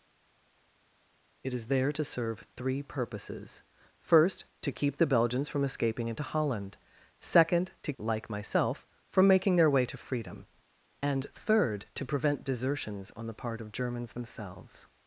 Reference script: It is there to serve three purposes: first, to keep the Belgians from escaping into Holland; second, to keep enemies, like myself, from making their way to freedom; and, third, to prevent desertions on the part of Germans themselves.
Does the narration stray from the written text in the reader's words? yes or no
yes